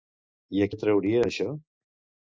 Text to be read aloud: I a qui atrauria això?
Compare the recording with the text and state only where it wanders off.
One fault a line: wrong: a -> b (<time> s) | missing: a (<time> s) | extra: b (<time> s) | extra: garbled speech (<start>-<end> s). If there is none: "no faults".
missing: qui (0.7 s)